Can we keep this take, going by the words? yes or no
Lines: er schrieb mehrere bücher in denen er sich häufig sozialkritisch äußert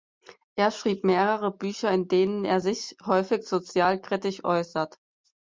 yes